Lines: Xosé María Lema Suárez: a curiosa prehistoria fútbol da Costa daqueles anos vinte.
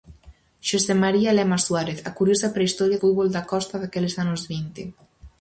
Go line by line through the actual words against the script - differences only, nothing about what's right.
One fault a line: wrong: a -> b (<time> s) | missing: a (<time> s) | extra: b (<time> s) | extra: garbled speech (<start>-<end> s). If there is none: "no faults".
no faults